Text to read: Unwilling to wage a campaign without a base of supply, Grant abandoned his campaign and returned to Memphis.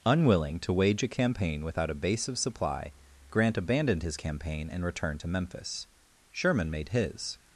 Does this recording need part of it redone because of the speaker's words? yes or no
yes